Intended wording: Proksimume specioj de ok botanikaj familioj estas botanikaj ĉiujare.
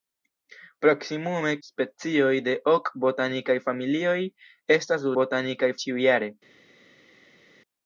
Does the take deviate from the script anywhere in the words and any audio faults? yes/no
no